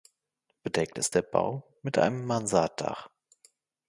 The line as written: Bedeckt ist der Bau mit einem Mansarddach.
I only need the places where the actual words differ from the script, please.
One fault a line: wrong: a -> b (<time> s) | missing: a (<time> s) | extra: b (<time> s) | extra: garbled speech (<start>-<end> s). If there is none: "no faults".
no faults